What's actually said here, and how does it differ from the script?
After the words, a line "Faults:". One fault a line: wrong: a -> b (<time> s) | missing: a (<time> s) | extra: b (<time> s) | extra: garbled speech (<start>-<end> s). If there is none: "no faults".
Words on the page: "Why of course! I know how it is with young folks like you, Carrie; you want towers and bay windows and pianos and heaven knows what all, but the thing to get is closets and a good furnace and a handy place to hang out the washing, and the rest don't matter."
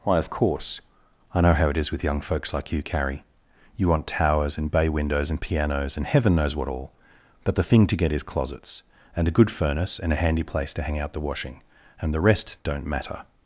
"Why of course! I know how it is with young folks like you, Carrie; you want towers and bay windows and pianos and heaven knows what all, but the thing to get is closets and a good furnace and a handy place to hang out the washing, and the rest don't matter."
Faults:
no faults